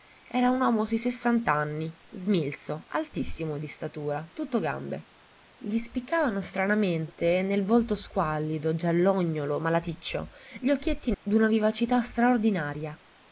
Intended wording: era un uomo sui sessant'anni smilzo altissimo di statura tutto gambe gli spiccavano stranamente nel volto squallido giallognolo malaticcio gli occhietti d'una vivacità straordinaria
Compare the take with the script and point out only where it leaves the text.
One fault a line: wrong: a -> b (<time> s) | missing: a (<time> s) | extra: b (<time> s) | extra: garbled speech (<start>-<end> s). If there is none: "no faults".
no faults